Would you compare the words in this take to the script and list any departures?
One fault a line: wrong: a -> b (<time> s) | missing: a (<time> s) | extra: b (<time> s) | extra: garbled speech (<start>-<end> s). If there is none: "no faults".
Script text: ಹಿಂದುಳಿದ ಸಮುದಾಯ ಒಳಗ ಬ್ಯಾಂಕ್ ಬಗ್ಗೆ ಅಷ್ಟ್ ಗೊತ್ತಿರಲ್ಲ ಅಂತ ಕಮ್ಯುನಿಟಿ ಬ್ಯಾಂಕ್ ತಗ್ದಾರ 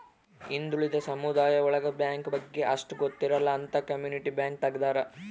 no faults